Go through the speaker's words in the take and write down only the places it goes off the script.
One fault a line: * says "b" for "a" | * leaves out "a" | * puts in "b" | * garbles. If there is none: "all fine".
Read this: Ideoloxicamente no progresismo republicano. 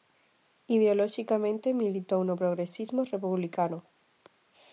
* puts in "militou"